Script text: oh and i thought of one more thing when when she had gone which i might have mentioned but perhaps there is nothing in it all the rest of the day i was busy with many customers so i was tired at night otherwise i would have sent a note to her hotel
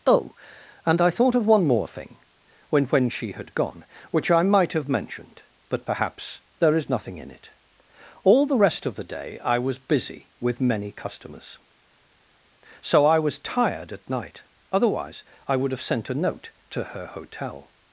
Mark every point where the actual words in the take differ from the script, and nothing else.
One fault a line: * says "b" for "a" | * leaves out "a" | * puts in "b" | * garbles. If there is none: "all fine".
all fine